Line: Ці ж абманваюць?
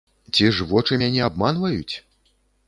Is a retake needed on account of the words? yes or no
yes